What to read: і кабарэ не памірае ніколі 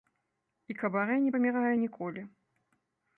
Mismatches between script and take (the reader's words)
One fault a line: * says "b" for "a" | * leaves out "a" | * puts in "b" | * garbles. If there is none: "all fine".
all fine